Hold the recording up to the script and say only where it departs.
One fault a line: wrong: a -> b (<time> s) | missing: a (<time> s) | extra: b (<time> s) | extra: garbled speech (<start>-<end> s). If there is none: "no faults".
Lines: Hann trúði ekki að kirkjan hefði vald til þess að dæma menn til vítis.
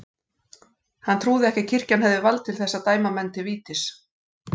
no faults